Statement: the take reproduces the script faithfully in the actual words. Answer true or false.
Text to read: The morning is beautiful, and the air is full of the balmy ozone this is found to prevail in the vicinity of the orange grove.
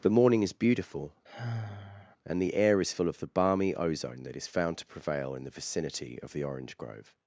false